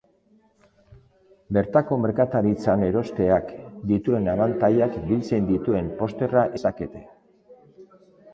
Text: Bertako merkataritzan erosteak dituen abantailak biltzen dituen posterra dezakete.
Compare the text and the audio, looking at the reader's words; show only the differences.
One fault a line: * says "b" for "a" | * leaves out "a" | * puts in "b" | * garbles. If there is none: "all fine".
all fine